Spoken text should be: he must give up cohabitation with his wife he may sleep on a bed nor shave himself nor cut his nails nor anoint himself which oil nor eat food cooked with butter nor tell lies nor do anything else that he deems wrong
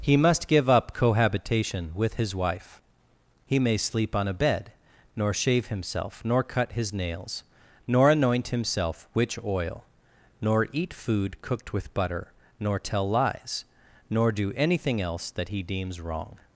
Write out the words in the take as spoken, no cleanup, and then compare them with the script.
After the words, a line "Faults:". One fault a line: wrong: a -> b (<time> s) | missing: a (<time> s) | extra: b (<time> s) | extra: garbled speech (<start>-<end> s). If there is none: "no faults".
he must give up cohabitation with his wife he may sleep on a bed nor shave himself nor cut his nails nor anoint himself which oil nor eat food cooked with butter nor tell lies nor do anything else that he deems wrong
Faults:
no faults